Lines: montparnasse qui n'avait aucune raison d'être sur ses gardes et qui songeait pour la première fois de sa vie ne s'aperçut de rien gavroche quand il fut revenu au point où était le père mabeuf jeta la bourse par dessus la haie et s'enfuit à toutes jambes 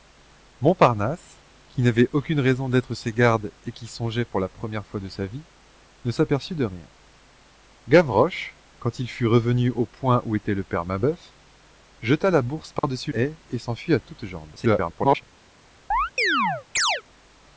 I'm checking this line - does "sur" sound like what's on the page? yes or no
no